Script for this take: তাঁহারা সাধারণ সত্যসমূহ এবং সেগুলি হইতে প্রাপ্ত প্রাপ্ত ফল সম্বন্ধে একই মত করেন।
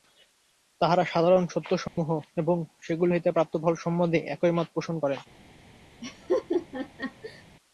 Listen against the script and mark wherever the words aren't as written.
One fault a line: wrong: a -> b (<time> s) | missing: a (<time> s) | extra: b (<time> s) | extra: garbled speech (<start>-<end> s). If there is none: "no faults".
missing: প্রাপ্ত (3.5 s)
extra: পোষণ (4.7 s)